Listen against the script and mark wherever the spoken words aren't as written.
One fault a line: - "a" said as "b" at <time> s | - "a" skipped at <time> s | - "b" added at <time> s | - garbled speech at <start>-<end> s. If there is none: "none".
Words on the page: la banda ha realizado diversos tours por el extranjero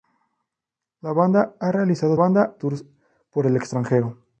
- "diversos" said as "banda" at 2.1 s